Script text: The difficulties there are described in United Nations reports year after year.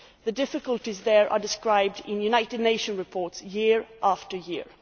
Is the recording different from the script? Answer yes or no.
no